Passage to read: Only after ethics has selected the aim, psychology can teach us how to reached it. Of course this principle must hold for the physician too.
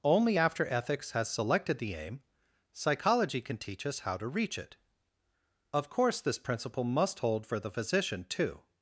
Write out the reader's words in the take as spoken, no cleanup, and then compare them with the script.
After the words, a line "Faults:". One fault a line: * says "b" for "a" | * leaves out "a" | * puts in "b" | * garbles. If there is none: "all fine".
Only after ethics has selected the aim, psychology can teach us how to reach it. Of course this principle must hold for the physician too.
Faults:
* says "reach" for "reached"